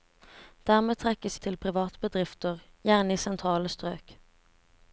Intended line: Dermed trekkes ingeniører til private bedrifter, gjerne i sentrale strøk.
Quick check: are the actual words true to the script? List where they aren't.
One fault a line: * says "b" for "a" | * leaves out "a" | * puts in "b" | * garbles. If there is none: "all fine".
* leaves out "ingeniører"